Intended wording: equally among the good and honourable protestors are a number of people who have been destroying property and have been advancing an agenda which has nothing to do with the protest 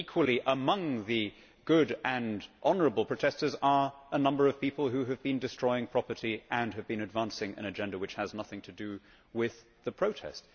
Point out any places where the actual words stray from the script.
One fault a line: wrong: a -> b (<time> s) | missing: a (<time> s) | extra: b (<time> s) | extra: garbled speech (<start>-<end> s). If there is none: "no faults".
no faults